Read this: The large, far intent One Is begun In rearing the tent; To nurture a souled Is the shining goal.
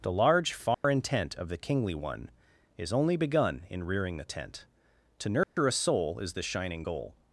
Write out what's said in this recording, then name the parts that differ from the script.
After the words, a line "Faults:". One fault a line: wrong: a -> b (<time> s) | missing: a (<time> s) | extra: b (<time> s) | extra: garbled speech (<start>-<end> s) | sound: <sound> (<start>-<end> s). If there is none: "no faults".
The large, far intent Of the Kingly One Is only begun In rearing the tent; To nurture a soul Is the shining goal.
Faults:
sound: dropout (0.7-0.8 s)
extra: Of the Kingly (1.4 s)
extra: only (2.9 s)
sound: dropout (5.4-5.6 s)
wrong: souled -> soul (5.7 s)